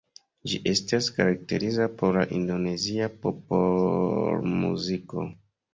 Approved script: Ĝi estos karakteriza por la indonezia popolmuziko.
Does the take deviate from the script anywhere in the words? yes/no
yes